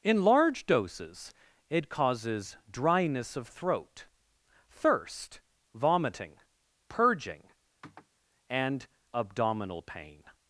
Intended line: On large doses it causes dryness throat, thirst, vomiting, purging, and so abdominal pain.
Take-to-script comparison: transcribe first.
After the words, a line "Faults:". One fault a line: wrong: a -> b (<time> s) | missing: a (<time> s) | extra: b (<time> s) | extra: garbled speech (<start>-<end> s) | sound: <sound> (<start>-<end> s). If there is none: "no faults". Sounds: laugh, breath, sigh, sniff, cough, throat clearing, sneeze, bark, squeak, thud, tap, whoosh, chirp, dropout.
In large doses it causes dryness of throat, thirst, vomiting, purging, and abdominal pain.
Faults:
wrong: On -> In (0.0 s)
extra: of (3.3 s)
sound: sniff (7.8-8.1 s)
missing: so (8.9 s)